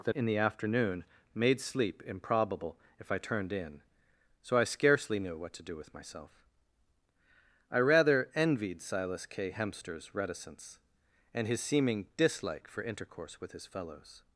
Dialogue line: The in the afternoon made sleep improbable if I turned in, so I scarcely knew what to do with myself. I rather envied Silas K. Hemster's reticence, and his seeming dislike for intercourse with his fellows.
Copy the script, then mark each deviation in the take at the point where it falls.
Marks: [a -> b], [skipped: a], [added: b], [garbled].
The in the afternoon made sleep improbable if I turned in, so I scarcely knew what to do with myself. I rather envied Silas K. Hemster's reticence, and his seeming dislike for intercourse with his fellows.